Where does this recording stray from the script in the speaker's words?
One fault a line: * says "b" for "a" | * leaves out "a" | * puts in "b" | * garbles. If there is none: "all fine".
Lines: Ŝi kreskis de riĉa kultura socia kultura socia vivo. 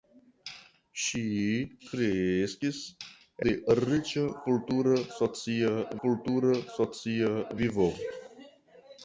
all fine